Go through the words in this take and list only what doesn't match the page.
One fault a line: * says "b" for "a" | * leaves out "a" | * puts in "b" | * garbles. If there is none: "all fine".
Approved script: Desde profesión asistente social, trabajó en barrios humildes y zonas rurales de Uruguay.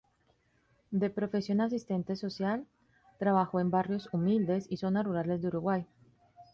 * says "De" for "Desde"